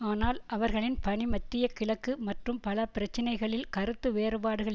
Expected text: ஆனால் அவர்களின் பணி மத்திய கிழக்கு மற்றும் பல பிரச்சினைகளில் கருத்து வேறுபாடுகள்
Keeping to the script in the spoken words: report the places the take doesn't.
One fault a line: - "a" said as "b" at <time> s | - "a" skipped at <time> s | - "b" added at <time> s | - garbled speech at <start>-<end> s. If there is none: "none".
none